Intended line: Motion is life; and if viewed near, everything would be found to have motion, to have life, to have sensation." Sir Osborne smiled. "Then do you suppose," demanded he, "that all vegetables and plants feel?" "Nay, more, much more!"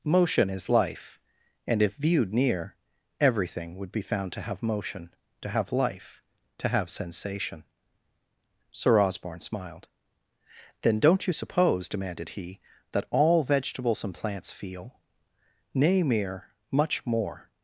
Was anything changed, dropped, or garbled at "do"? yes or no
yes